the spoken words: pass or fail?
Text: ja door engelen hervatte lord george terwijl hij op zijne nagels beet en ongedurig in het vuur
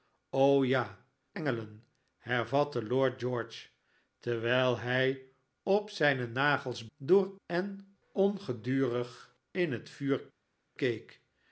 fail